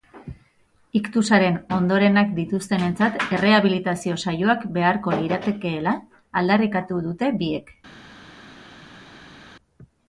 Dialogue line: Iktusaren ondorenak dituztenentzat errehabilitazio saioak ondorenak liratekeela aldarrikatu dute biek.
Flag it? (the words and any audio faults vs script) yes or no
yes